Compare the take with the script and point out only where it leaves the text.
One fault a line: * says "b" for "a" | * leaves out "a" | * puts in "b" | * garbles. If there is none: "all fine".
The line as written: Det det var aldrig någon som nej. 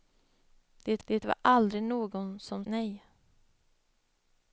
all fine